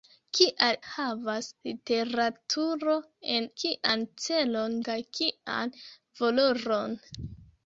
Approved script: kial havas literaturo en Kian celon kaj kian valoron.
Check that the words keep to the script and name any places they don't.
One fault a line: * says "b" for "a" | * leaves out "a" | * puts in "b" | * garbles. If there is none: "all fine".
all fine